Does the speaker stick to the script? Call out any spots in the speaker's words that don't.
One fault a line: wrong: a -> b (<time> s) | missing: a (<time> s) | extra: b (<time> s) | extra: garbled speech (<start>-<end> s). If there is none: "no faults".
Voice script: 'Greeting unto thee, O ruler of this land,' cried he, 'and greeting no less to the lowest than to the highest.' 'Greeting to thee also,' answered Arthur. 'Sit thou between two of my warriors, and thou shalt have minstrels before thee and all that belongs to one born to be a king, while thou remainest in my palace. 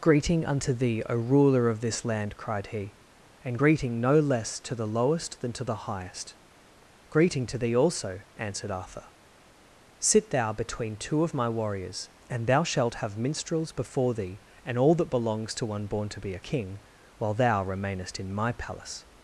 no faults